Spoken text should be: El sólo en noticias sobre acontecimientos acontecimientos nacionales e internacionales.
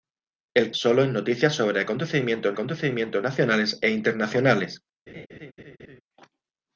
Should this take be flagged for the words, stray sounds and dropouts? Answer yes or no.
yes